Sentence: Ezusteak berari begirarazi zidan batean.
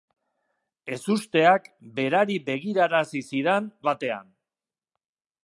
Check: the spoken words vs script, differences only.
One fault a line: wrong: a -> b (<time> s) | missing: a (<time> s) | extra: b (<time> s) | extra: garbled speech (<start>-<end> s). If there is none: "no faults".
no faults